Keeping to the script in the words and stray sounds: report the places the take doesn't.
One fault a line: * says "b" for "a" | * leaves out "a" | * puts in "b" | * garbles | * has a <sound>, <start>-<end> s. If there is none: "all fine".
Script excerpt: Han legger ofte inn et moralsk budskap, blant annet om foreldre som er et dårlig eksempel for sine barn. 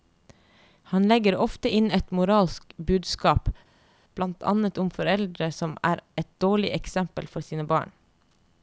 all fine